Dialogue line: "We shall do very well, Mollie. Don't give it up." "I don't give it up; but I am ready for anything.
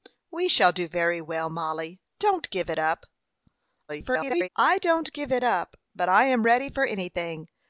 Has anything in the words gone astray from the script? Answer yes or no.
yes